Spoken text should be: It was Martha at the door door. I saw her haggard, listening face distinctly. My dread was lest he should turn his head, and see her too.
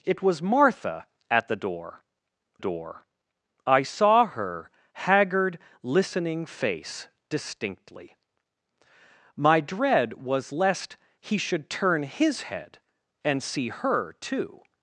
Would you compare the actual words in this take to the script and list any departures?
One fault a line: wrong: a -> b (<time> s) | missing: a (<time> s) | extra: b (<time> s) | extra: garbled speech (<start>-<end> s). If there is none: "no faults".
no faults